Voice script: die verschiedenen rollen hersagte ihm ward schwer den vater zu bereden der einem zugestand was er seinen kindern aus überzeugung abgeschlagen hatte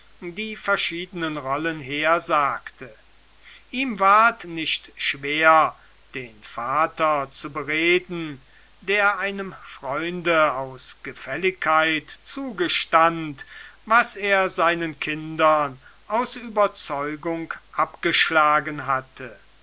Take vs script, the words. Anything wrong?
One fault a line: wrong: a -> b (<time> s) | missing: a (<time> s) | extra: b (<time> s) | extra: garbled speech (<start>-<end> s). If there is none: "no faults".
extra: nicht (4.4 s)
extra: freunde aus gefälligkeit (9.6 s)